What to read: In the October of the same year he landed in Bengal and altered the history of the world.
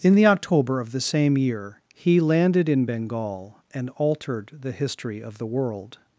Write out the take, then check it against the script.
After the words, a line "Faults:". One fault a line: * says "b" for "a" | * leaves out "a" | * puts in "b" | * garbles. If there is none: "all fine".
In the October of the same year he landed in Bengal and altered the history of the world.
Faults:
all fine